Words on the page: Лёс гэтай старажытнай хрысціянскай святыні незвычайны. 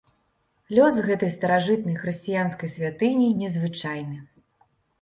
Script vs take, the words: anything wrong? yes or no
no